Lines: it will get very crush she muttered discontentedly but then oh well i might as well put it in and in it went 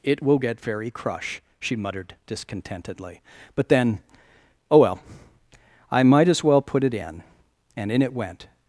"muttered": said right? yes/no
yes